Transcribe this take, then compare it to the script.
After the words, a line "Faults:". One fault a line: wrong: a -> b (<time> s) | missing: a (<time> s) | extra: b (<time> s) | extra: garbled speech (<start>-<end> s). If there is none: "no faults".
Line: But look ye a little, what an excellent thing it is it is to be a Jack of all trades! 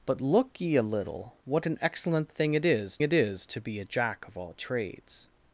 But look ye a little, what an excellent thing it is it is to be a Jack of all trades!
Faults:
no faults